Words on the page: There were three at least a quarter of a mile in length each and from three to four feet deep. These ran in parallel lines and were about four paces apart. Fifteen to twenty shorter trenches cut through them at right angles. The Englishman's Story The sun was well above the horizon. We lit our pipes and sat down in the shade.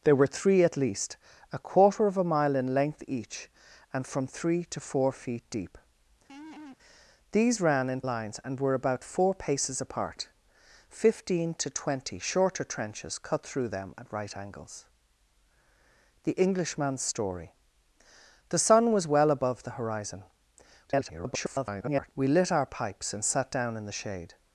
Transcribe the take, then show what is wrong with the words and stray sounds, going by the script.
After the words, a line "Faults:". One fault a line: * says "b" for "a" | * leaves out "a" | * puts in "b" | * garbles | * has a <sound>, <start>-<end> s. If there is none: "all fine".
There were three at least a quarter of a mile in length each and from three to four feet deep. These ran in lines and were about four paces apart. Fifteen to twenty shorter trenches cut through them at right angles. The Englishman's Story The sun was well above the horizon. [garbled] We lit our pipes and sat down in the shade.
Faults:
* has a laugh, 6.3-6.8 s
* leaves out "parallel"
* garbles